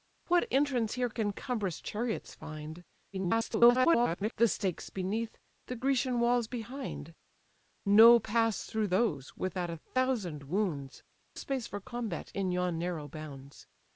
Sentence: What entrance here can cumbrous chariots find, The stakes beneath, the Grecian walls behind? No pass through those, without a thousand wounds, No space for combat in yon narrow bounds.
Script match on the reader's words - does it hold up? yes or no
no